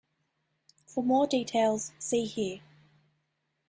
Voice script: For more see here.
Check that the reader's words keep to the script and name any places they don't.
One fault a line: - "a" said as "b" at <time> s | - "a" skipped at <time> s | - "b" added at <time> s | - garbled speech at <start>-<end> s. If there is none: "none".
- "details" added at 1.3 s